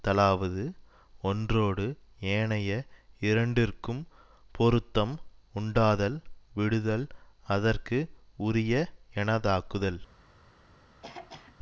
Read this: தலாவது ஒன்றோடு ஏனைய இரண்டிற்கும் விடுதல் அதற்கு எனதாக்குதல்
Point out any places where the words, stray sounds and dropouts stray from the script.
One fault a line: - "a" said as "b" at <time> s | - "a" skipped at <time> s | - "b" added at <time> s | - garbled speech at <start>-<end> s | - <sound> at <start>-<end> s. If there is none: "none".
- "பொருத்தம் உண்டாதல்" added at 4.5 s
- "உரிய" added at 8.4 s
- throat clearing at 11.0-11.5 s